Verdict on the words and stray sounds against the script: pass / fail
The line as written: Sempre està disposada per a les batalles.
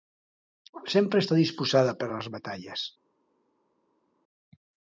pass